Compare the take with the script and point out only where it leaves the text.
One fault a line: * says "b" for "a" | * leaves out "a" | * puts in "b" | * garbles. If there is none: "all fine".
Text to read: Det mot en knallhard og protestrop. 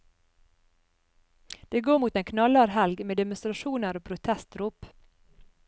* puts in "går"
* puts in "helg med demonstrasjoner"